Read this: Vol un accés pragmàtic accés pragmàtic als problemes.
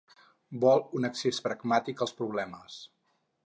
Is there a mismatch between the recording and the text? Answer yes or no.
yes